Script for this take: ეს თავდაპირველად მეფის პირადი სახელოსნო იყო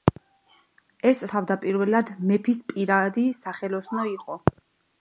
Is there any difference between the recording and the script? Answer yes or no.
no